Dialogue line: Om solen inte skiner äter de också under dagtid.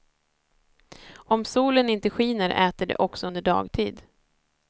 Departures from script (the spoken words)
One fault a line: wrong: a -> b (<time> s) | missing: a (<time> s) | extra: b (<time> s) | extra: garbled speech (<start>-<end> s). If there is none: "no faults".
no faults